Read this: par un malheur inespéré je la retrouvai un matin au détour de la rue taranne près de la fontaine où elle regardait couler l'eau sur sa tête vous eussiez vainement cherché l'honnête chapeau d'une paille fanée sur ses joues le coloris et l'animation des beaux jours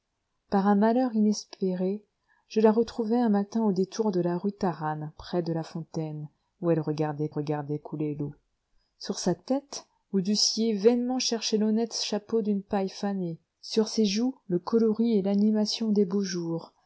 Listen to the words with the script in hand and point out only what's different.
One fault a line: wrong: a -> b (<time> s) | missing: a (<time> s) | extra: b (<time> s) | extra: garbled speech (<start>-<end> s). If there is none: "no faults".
extra: regardait (7.3 s)